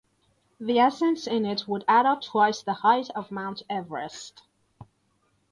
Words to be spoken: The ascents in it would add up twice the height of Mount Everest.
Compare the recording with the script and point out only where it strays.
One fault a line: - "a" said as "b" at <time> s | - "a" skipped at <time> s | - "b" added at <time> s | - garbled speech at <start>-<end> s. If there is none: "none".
none